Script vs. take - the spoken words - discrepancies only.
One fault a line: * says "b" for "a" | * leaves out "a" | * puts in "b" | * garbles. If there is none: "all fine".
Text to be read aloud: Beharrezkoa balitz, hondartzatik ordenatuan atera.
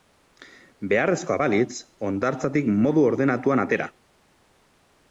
* puts in "modu"